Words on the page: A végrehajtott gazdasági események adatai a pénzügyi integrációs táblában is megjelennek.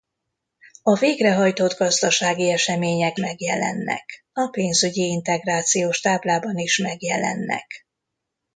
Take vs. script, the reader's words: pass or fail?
fail